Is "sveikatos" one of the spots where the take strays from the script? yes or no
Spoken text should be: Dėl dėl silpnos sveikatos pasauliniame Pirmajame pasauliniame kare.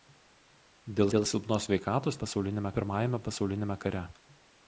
no